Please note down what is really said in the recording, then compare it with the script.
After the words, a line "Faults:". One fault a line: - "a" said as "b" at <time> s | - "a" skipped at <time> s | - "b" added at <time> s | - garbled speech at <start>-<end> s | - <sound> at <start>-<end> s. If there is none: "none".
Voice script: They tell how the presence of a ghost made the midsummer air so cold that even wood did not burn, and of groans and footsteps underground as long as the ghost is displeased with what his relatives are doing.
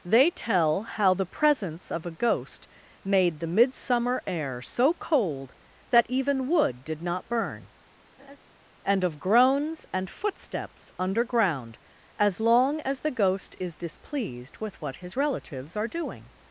They tell how the presence of a ghost made the midsummer air so cold that even wood did not burn, and of groans and footsteps underground as long as the ghost is displeased with what his relatives are doing.
Faults:
- laugh at 8.2-8.4 s